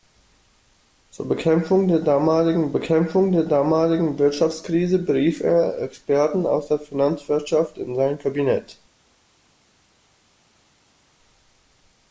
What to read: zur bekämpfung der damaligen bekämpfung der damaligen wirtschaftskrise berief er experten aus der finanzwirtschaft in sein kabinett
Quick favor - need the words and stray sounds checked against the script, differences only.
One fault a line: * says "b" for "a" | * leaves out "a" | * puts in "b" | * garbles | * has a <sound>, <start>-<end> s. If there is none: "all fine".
all fine